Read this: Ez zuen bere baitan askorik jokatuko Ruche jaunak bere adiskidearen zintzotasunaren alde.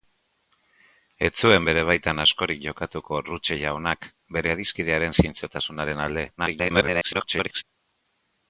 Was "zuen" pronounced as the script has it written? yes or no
yes